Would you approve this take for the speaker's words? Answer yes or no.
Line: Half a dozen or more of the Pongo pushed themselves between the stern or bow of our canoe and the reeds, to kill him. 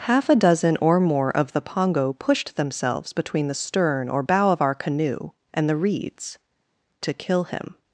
yes